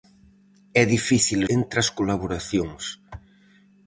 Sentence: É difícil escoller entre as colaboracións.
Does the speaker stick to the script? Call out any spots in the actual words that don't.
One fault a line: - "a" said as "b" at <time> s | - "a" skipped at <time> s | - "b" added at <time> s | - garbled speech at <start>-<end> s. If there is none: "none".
- "escoller" skipped at 1.4 s